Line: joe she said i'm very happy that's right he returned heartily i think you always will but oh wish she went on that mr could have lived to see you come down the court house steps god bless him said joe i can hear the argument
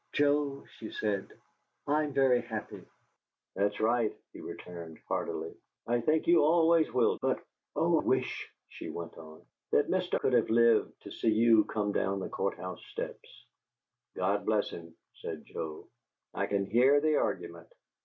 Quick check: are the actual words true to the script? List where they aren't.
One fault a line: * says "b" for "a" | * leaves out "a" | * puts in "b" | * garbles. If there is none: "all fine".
all fine